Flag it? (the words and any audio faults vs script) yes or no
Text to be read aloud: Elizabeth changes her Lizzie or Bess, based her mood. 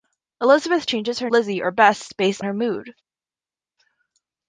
no